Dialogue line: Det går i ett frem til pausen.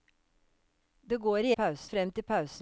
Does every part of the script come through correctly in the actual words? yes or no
no